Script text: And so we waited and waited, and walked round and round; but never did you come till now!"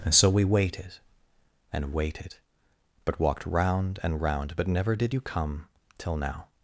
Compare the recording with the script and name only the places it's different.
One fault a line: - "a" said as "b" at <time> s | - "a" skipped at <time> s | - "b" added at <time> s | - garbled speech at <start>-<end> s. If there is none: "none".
- "and" said as "but" at 3.0 s